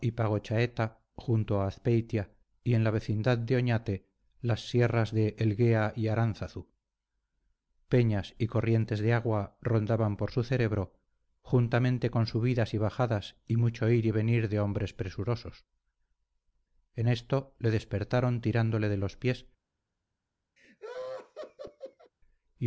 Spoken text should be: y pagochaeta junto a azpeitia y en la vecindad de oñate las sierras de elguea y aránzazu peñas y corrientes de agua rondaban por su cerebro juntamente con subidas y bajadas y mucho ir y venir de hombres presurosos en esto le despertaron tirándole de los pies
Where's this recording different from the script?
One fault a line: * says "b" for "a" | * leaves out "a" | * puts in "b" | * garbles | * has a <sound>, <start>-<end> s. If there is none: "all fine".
* has a laugh, 20.6-22.1 s